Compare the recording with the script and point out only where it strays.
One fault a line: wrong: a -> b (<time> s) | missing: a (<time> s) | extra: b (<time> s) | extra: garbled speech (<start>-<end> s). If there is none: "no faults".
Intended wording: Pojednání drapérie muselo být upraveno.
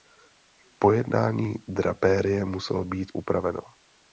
no faults